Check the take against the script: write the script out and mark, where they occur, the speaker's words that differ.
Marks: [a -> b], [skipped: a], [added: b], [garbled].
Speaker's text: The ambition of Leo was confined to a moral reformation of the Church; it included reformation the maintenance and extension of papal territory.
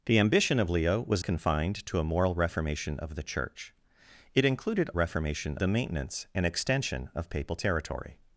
The ambition of Leo was confined to a moral reformation of the Church; it included reformation the maintenance and extension of papal territory.